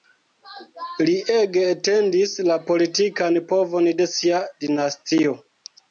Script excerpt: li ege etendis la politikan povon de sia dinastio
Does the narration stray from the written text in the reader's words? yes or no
no